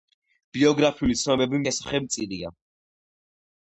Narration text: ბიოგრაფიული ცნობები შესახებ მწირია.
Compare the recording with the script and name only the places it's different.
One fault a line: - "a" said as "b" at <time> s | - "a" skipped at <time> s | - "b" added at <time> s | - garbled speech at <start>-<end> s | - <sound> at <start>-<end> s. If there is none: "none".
none